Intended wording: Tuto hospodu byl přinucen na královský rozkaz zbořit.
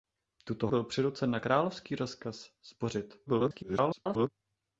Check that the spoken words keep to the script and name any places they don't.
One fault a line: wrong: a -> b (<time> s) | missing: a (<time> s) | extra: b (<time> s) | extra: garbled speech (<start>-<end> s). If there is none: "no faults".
missing: hospodu (0.7 s)
extra: garbled speech (3.3-4.3 s)